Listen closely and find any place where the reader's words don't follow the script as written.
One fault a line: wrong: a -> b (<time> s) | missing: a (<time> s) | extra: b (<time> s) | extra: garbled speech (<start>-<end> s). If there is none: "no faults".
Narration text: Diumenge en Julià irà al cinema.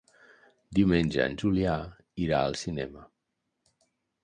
no faults